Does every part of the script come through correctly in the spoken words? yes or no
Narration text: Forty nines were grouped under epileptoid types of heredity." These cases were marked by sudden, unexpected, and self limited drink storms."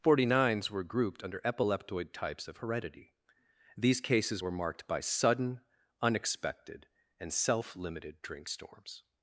yes